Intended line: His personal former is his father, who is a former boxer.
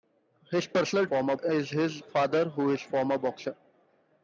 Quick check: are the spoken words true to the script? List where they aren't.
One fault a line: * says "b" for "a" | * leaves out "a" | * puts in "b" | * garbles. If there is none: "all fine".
all fine